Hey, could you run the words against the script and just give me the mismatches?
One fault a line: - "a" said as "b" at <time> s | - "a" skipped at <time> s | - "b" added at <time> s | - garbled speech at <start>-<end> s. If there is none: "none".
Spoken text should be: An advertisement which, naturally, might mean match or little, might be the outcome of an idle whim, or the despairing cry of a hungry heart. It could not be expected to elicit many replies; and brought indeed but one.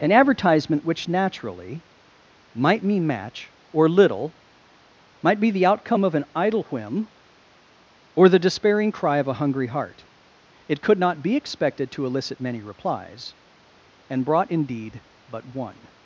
none